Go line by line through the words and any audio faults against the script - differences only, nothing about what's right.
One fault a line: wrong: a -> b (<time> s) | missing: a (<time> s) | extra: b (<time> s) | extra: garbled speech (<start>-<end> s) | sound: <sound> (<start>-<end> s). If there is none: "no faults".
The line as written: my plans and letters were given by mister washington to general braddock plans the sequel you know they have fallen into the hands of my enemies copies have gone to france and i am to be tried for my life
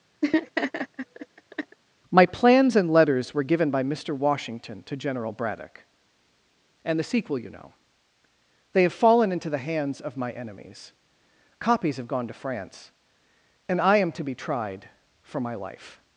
sound: laugh (0.2-1.8 s)
wrong: plans -> and (6.8 s)